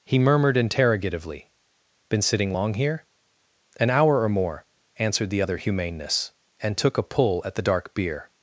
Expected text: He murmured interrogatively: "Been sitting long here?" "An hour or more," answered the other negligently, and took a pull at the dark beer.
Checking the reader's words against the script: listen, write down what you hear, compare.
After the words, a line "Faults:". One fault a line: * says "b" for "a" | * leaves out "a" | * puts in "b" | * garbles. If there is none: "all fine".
He murmured interrogatively: "Been sitting long here?" "An hour or more," answered the other humaneness, and took a pull at the dark beer.
Faults:
* says "humaneness" for "negligently"